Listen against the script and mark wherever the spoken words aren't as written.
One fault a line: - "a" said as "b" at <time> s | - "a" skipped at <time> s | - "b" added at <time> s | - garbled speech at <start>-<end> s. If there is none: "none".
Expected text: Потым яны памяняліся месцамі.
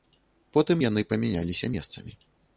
none